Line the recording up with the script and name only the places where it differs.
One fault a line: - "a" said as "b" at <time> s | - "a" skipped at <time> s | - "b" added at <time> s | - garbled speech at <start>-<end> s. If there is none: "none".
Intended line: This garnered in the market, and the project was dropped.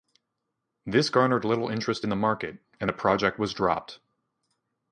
- "little interest" added at 1.4 s